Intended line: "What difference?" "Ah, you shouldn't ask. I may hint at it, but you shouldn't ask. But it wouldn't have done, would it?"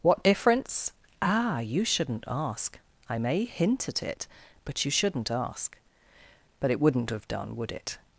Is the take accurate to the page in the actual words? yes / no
yes